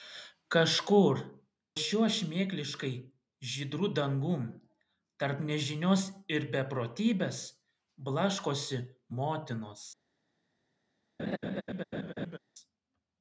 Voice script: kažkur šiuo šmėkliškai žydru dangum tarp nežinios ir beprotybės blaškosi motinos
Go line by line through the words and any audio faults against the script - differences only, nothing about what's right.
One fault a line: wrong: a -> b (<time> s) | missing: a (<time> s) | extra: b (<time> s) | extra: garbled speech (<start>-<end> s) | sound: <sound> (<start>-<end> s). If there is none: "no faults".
sound: laugh (11.2-12.4 s)